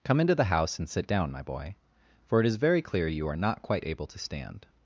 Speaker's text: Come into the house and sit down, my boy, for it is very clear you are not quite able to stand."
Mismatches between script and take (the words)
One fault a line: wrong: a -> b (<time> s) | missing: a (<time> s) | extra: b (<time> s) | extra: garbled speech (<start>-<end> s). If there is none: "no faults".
no faults